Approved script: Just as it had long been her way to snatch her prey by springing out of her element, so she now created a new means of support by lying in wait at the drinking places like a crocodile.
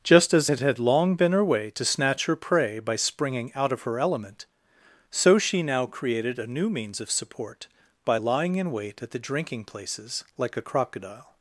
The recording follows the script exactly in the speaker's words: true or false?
true